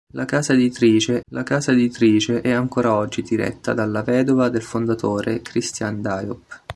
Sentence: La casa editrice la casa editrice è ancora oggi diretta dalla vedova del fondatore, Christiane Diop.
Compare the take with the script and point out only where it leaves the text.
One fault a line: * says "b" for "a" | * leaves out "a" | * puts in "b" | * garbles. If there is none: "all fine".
all fine